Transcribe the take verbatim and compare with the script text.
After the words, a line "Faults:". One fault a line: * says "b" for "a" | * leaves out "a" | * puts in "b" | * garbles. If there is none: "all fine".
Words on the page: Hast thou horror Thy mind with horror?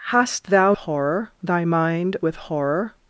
Hast thou horror Thy mind with horror?
Faults:
all fine